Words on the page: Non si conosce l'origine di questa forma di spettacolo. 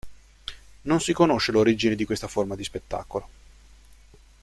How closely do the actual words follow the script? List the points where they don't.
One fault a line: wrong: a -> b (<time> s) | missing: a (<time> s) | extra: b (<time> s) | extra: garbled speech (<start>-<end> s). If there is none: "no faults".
no faults